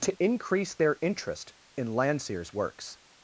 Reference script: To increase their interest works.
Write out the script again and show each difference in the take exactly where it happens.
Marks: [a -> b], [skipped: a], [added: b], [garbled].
To increase their interest [added: in Landseer's] works.